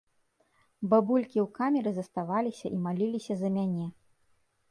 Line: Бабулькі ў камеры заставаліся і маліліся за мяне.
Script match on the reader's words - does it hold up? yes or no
yes